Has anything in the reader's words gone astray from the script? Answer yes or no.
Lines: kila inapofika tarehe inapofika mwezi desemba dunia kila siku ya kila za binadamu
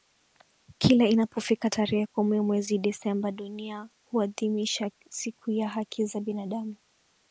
yes